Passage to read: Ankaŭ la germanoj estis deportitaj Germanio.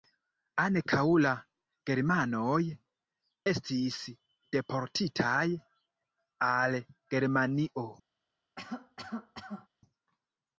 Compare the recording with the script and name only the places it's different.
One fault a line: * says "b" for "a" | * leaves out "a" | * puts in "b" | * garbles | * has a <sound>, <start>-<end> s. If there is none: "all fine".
* puts in "al"
* has a cough, 8.6-9.7 s